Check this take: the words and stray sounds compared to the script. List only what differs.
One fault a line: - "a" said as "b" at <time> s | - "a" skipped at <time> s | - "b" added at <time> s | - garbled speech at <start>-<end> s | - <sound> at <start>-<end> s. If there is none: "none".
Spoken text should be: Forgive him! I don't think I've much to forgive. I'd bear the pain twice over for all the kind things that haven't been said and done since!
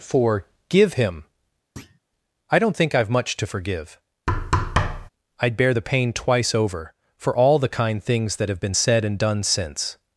- thud at 1.8-2.0 s
- thud at 4.3-5.1 s
- "haven't" said as "have" at 8.5 s